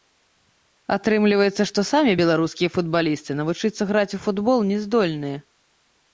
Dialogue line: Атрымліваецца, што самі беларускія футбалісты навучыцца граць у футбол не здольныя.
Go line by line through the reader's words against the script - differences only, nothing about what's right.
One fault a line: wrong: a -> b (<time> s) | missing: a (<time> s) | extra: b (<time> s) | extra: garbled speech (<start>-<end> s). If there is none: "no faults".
no faults